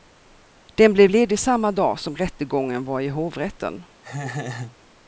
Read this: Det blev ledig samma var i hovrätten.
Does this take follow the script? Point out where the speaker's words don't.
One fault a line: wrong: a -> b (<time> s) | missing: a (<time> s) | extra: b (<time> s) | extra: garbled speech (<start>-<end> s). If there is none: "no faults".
wrong: Det -> Den (0.8 s)
extra: dag som rättegången (1.7 s)